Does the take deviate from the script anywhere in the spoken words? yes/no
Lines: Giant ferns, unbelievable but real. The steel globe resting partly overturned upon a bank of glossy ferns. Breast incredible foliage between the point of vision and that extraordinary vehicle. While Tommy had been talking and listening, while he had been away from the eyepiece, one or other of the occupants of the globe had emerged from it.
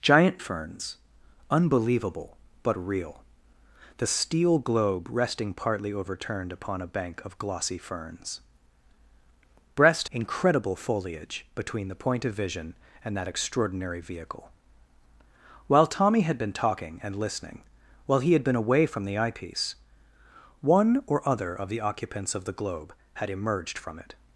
no